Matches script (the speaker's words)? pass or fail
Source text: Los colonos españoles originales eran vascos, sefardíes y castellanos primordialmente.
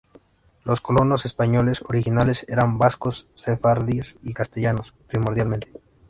pass